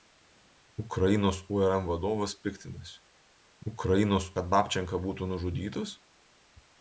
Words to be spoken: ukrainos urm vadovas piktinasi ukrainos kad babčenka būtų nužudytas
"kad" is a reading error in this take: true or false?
false